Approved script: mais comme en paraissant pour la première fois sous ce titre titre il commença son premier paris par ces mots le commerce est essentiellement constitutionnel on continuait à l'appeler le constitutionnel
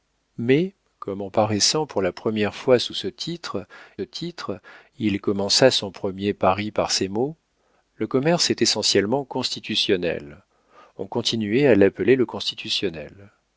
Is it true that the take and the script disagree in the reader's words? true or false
false